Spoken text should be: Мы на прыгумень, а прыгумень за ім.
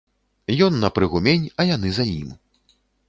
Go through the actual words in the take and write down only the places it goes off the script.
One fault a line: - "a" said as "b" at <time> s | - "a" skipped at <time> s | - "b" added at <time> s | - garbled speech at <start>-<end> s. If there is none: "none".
- "Мы" said as "Ён" at 0.7 s
- "прыгумень" said as "яны" at 1.8 s